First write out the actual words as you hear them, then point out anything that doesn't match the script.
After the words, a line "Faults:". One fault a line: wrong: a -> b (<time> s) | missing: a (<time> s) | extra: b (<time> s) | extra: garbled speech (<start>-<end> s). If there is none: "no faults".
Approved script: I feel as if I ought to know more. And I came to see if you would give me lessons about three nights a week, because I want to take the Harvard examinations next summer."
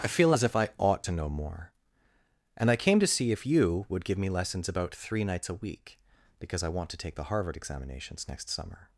I feel as if I ought to know more. And I came to see if you would give me lessons about three nights a week, because I want to take the Harvard examinations next summer."
Faults:
no faults